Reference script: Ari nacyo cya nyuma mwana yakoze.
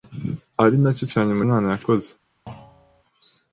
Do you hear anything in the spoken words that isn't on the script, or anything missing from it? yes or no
no